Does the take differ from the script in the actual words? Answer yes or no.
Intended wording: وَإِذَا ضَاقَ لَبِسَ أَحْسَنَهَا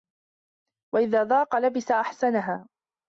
no